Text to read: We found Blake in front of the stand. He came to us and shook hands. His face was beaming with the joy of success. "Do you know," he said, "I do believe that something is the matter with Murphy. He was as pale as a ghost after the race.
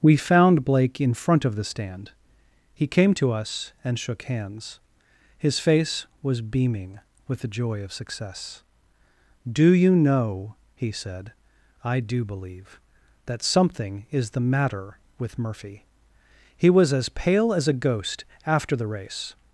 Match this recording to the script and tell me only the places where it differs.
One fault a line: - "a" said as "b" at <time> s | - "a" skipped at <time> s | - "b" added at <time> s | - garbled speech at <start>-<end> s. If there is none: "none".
none